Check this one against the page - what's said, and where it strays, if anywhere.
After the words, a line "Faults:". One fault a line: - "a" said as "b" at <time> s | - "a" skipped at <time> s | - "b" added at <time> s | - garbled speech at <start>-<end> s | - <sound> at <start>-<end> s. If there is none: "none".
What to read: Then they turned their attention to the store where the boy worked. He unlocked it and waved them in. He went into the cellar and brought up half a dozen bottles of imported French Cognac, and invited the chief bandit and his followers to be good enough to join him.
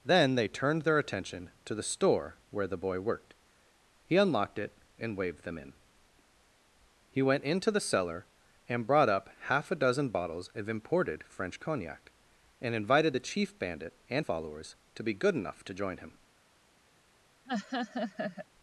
Then they turned their attention to the store where the boy worked. He unlocked it and waved them in. He went into the cellar and brought up half a dozen bottles of imported French Cognac, and invited the chief bandit and followers to be good enough to join him.
Faults:
- "his" skipped at 14.3 s
- laugh at 17.5-18.5 s